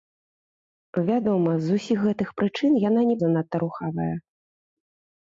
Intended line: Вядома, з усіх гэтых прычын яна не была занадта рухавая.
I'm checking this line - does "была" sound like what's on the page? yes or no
no